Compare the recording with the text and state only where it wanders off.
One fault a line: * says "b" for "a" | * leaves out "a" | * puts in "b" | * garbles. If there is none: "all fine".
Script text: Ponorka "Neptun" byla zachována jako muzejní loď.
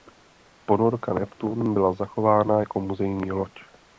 all fine